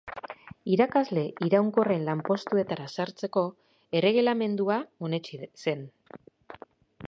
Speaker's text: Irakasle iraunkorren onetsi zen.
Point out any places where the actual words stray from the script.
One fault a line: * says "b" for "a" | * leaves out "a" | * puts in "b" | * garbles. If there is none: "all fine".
* puts in "lanpostuetara sartzeko erregelamendua"